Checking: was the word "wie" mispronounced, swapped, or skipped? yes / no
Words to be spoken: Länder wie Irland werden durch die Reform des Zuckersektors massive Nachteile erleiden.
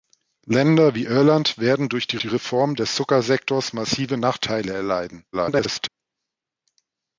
no